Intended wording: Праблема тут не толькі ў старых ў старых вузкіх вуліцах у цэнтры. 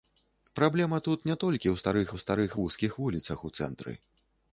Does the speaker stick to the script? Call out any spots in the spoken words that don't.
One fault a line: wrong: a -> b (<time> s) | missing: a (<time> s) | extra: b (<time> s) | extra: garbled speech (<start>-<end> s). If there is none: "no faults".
no faults